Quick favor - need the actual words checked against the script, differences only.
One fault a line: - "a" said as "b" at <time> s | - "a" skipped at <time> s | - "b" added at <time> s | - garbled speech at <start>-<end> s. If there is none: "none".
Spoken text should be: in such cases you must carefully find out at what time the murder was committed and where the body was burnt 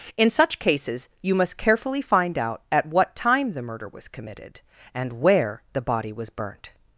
none